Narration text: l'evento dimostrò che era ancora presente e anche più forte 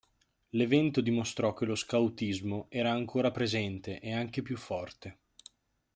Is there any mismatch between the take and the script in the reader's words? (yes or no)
yes